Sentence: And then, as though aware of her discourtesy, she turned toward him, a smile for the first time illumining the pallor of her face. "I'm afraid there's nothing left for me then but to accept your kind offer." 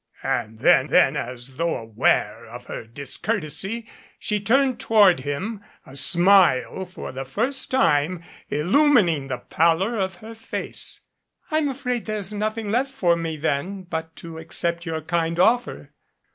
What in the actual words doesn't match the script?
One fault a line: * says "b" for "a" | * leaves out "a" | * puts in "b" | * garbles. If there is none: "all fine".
* puts in "then"